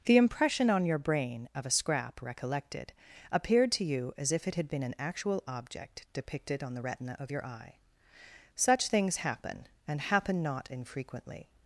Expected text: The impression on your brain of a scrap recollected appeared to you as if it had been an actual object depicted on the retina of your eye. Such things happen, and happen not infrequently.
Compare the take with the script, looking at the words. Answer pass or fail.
pass